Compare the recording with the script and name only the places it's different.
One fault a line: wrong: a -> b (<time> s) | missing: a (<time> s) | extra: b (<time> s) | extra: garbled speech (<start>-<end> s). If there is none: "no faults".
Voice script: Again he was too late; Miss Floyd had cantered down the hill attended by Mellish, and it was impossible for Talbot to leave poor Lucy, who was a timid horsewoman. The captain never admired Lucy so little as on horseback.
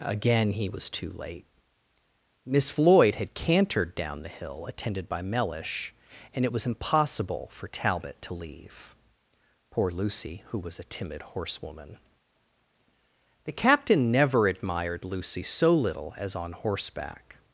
no faults